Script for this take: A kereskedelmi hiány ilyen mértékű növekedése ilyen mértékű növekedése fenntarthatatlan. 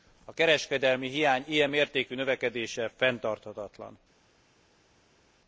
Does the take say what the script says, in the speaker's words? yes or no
no